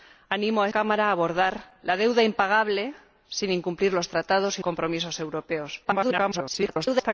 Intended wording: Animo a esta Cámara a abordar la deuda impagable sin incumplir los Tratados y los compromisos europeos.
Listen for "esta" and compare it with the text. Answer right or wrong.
wrong